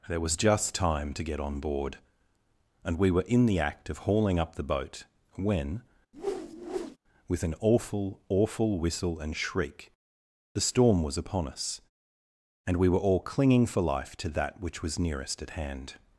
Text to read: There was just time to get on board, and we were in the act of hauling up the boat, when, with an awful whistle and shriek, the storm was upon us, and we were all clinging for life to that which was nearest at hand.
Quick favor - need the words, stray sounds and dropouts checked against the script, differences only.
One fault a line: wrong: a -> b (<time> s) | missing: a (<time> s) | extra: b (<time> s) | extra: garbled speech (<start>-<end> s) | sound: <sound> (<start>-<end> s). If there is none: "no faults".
sound: whoosh (6.1-7.0 s)
extra: awful (8.3 s)